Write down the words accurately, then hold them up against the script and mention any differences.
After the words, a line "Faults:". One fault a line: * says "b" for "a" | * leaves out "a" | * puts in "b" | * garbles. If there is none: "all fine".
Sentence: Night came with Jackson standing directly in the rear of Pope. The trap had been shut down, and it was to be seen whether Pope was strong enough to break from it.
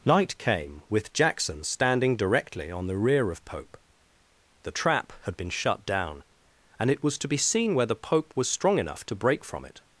Night came with Jackson standing directly on the rear of Pope. The trap had been shut down, and it was to be seen whether Pope was strong enough to break from it.
Faults:
* says "on" for "in"